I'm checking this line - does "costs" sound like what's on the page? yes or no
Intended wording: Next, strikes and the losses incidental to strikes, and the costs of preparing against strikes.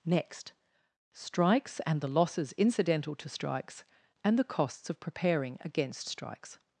yes